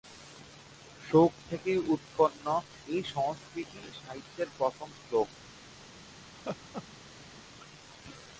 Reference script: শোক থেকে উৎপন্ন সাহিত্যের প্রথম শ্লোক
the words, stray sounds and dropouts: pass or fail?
fail